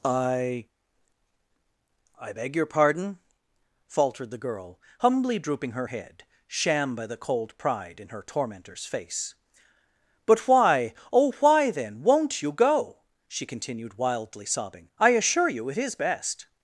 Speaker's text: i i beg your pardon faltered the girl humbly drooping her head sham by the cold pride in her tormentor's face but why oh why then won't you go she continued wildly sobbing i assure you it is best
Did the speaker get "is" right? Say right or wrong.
right